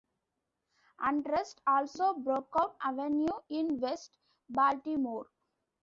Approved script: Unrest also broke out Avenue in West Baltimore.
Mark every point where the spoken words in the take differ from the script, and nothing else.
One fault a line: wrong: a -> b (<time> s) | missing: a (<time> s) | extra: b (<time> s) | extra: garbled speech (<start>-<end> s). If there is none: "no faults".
no faults